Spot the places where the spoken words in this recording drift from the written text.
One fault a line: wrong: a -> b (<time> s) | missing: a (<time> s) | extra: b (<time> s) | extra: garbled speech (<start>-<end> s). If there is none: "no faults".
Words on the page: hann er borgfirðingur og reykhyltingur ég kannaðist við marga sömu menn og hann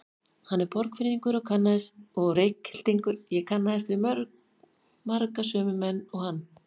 no faults